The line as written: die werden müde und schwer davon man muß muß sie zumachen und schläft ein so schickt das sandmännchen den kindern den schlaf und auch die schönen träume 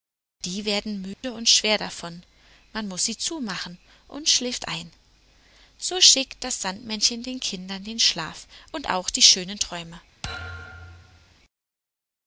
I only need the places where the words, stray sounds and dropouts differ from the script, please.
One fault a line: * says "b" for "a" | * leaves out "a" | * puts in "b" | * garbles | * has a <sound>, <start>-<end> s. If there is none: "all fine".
* has a dropout, 1.1-1.2 s
* leaves out "muß"
* has a thud, 10.2-11.3 s